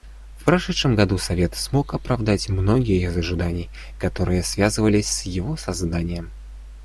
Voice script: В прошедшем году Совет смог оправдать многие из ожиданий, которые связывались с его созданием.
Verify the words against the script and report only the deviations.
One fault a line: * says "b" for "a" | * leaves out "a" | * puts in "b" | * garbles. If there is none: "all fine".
all fine